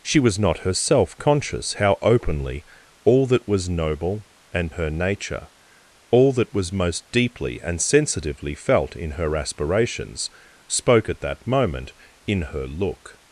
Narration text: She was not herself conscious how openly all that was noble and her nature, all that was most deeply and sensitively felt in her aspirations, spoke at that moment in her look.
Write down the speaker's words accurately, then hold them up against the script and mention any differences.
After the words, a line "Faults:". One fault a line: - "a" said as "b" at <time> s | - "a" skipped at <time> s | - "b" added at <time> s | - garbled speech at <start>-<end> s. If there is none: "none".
She was not herself conscious how openly all that was noble and her nature, all that was most deeply and sensitively felt in her aspirations, spoke at that moment in her look.
Faults:
none